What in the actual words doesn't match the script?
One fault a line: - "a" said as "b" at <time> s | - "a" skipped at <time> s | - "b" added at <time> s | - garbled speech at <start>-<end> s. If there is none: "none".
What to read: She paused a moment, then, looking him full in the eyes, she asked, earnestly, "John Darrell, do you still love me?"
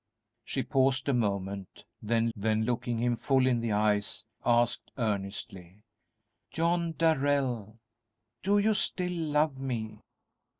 - "then" added at 2.3 s
- "she" skipped at 4.3 s